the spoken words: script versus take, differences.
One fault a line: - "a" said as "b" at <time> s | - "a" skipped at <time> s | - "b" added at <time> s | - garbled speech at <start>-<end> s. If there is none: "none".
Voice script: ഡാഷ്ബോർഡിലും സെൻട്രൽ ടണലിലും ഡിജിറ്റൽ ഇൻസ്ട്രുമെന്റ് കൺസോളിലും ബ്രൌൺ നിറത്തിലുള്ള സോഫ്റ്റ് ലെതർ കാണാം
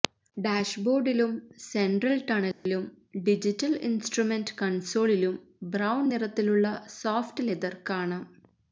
none